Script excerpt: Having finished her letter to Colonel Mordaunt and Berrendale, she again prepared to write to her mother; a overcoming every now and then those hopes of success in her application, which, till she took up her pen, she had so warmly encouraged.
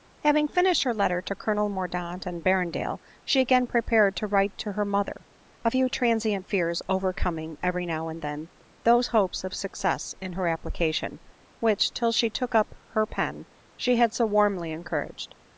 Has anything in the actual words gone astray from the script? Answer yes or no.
yes